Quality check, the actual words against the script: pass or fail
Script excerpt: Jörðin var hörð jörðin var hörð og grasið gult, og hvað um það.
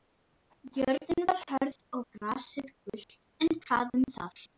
fail